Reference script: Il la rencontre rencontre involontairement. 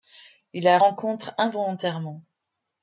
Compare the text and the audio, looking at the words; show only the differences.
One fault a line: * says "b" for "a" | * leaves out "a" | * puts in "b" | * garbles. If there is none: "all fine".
* leaves out "rencontre"